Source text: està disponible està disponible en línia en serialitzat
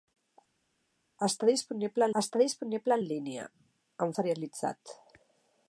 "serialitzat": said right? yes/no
yes